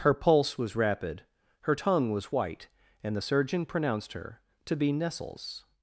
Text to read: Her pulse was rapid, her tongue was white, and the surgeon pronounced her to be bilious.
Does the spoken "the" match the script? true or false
true